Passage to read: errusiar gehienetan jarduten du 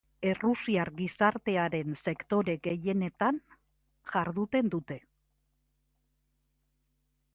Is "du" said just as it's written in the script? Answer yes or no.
no